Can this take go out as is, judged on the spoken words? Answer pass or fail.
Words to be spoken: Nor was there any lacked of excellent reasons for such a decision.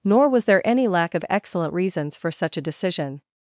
fail